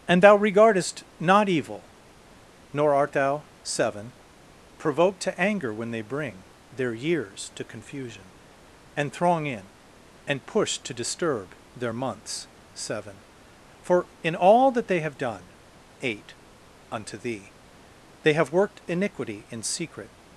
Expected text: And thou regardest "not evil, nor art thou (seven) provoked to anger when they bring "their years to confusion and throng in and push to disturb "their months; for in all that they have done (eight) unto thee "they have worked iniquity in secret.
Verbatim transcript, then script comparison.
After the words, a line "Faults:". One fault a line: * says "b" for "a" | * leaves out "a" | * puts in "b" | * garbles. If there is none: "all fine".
And thou regardest "not evil, nor art thou (seven) provoked to anger when they bring "their years to confusion and throng in and push to disturb "their months; seven for in all that they have done (eight) unto thee "they have worked iniquity in secret.
Faults:
* puts in "seven"